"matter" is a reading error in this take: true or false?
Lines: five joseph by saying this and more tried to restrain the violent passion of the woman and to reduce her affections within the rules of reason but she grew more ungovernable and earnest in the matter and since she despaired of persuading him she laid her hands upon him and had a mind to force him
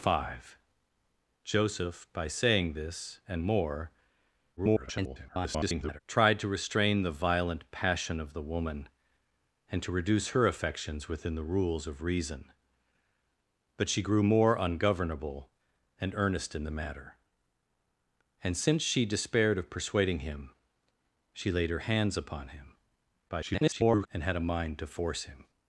false